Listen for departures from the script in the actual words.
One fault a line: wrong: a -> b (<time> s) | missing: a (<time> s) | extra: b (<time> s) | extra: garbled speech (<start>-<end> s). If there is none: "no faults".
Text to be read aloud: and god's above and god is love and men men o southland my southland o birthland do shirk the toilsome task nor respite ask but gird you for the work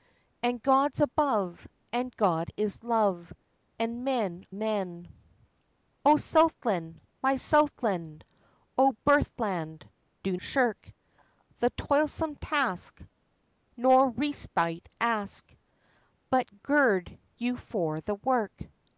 no faults